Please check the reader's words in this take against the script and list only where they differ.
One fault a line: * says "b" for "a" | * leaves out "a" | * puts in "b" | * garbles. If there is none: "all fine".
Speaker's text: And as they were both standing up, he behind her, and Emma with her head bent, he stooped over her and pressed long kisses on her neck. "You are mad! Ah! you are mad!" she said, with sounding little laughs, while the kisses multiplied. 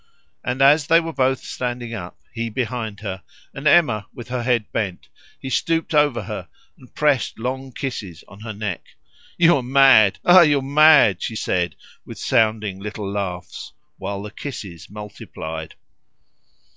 all fine